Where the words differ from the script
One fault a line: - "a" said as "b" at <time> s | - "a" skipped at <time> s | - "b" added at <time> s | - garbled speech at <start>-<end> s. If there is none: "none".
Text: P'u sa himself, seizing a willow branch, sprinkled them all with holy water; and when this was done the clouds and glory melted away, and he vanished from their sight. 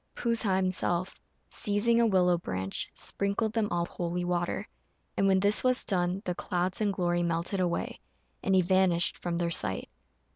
- "with" skipped at 3.8 s